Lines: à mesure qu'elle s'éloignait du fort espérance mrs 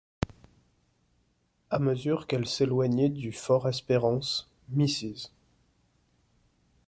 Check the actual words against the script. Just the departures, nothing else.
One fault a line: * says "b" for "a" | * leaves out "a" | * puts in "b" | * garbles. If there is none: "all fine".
all fine